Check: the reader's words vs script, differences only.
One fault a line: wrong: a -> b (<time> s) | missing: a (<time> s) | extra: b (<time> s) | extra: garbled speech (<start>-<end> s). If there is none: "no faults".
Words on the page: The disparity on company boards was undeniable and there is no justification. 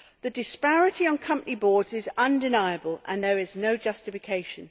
wrong: was -> is (1.9 s)